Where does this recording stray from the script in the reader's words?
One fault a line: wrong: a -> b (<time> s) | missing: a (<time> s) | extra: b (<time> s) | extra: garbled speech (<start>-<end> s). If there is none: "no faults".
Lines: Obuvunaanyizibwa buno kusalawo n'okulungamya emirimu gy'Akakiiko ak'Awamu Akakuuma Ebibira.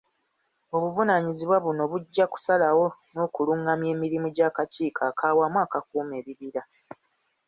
extra: bujja (1.9 s)